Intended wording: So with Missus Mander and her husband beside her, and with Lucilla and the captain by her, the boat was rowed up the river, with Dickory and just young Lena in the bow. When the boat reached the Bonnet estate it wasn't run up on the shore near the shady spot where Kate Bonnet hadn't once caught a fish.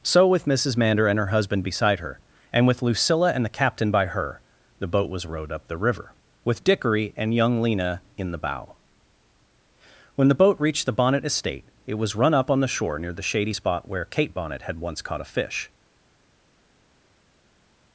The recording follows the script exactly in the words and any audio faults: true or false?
false